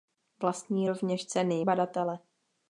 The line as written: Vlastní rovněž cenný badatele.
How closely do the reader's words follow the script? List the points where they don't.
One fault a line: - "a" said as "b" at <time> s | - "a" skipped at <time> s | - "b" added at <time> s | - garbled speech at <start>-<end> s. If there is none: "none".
none